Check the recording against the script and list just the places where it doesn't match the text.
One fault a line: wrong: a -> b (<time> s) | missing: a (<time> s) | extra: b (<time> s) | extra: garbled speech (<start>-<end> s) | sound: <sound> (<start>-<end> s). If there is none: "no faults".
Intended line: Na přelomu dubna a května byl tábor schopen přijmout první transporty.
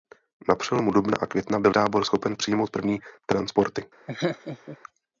sound: laugh (4.1-4.8 s)